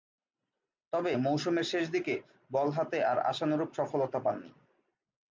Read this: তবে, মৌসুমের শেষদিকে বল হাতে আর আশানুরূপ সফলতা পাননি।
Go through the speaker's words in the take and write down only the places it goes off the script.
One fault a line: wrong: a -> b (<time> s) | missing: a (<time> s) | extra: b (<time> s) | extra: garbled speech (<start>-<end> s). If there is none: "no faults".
no faults